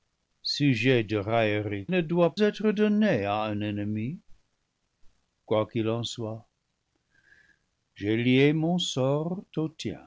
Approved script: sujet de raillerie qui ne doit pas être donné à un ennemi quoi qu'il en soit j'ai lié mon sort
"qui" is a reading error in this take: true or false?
true